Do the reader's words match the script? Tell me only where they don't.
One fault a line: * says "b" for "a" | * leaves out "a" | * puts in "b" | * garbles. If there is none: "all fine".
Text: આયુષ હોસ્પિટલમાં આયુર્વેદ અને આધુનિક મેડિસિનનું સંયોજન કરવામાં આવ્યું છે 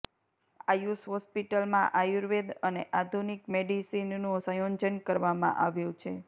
all fine